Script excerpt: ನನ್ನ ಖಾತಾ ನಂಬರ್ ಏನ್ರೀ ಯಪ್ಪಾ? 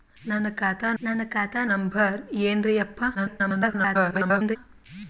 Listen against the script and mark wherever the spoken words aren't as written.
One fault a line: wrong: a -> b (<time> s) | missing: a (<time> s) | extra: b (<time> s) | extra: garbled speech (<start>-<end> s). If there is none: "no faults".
extra: ನನ್ನ ಖಾತಾ (1.0 s)
extra: garbled speech (3.1-4.6 s)